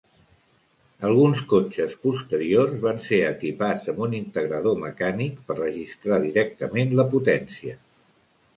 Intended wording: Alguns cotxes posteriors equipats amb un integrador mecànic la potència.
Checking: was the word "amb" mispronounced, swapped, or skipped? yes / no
no